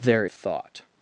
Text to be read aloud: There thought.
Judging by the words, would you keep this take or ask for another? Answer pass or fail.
pass